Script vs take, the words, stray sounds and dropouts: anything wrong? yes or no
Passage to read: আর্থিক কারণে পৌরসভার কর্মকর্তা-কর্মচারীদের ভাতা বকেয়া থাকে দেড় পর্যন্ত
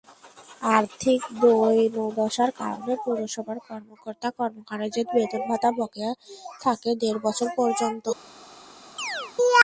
yes